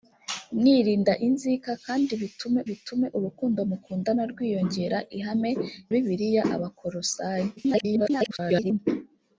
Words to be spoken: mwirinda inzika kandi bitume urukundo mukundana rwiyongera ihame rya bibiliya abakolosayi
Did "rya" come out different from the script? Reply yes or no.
yes